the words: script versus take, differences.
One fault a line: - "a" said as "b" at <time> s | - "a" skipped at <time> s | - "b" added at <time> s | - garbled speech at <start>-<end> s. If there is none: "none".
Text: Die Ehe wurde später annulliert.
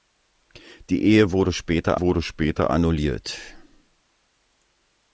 - "wurde später" added at 2.0 s